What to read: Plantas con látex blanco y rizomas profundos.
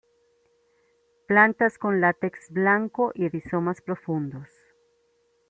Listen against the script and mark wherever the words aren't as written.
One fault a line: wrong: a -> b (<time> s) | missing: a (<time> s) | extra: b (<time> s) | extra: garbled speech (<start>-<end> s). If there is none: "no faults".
no faults